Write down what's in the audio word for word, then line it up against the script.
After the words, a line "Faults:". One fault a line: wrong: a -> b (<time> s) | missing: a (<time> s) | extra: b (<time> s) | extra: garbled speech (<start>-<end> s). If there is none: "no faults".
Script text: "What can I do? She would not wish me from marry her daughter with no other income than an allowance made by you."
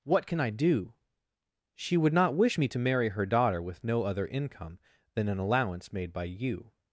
"What can I do? She would not wish me to marry her daughter with no other income than an allowance made by you."
Faults:
wrong: from -> to (2.7 s)